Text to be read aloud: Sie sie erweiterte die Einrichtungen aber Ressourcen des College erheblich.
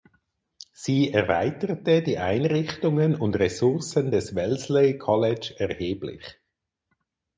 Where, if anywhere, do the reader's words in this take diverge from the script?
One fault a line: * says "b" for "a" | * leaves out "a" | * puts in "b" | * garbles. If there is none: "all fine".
* leaves out "sie"
* says "und" for "aber"
* puts in "Wellesley"